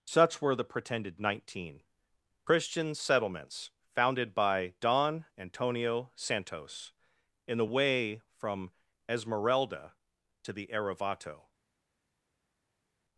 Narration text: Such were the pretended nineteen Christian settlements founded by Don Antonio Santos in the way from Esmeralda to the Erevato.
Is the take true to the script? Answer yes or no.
yes